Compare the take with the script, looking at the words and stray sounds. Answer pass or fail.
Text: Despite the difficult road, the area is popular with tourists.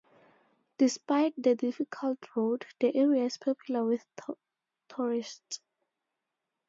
pass